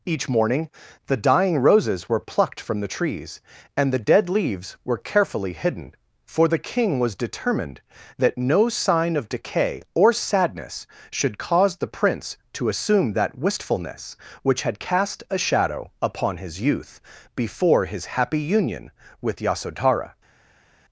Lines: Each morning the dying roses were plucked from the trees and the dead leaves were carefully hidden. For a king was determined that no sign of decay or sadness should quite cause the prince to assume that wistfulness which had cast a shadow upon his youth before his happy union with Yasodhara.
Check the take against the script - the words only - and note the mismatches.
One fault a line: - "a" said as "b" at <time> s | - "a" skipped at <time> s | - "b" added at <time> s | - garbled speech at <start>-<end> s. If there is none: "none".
- "a" said as "the" at 6.5 s
- "quite" skipped at 11.4 s